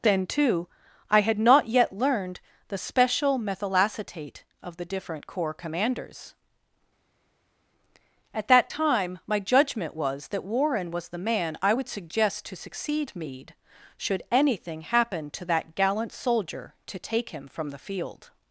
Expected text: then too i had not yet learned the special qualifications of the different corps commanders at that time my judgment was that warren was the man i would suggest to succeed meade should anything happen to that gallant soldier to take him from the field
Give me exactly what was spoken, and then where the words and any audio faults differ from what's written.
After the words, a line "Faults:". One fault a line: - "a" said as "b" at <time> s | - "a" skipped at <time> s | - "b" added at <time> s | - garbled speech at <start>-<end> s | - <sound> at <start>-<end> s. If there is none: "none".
then too i had not yet learned the special methylacetate of the different corps commanders at that time my judgment was that warren was the man i would suggest to succeed meade should anything happen to that gallant soldier to take him from the field
Faults:
- "qualifications" said as "methylacetate" at 3.4 s